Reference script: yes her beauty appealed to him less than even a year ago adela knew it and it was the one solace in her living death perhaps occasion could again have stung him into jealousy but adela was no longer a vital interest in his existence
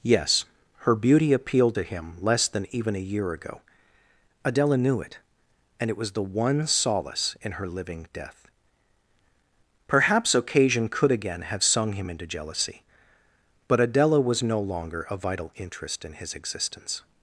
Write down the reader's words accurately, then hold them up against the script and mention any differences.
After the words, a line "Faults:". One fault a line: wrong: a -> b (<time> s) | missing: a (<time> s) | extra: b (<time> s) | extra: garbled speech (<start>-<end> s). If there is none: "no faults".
yes her beauty appealed to him less than even a year ago adela knew it and it was the one solace in her living death perhaps occasion could again have sung him into jealousy but adela was no longer a vital interest in his existence
Faults:
wrong: stung -> sung (11.6 s)